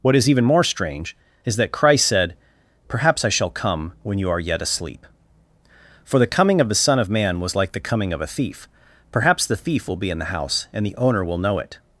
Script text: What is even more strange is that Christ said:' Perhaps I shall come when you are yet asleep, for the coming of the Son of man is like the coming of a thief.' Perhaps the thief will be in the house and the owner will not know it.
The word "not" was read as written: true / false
false